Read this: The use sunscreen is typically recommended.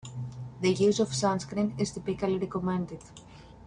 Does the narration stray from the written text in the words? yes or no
yes